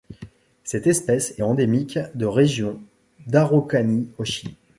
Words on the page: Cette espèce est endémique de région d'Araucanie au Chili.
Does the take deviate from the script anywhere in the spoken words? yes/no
no